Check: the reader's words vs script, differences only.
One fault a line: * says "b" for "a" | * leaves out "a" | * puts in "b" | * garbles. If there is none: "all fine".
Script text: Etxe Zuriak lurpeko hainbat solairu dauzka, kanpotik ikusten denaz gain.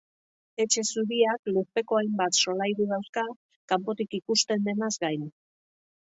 all fine